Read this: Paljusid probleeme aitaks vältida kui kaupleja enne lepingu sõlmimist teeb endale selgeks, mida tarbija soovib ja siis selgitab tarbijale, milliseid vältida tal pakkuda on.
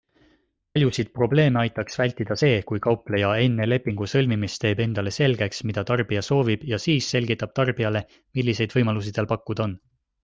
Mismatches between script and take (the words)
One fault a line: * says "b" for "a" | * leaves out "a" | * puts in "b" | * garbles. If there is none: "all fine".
* puts in "see"
* says "võimalusi" for "vältida"